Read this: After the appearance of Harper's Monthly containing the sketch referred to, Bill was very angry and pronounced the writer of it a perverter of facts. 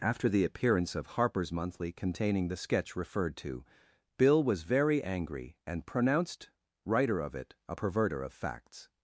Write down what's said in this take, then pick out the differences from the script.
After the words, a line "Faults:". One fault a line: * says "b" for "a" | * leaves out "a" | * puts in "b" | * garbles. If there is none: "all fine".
After the appearance of Harper's Monthly containing the sketch referred to, Bill was very angry and pronounced writer of it a perverter of facts.
Faults:
* leaves out "the"